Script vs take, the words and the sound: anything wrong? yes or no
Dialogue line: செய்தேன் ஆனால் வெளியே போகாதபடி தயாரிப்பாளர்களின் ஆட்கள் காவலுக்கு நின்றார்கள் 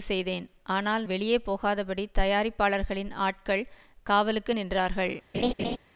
yes